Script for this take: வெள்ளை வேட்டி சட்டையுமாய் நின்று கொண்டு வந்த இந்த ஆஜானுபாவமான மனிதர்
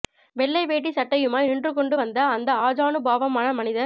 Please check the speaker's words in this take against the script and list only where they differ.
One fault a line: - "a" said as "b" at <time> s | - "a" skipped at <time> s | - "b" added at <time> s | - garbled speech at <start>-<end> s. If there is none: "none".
- "இந்த" said as "அந்த" at 2.4 s